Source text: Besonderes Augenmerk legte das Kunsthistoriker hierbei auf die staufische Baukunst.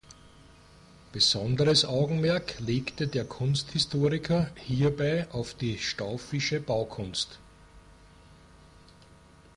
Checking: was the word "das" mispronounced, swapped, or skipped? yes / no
yes